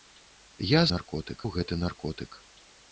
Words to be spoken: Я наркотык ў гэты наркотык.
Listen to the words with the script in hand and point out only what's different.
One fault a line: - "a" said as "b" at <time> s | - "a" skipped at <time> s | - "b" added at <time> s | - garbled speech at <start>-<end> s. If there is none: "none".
none